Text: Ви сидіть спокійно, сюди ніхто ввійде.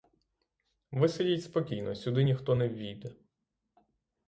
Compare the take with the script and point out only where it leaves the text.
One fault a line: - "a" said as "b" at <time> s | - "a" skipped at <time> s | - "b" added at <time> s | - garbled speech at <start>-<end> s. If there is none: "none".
- "не" added at 2.5 s